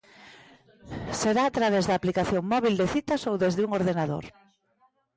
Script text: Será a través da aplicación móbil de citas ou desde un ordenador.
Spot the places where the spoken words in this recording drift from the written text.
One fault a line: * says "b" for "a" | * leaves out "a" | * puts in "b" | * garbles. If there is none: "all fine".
all fine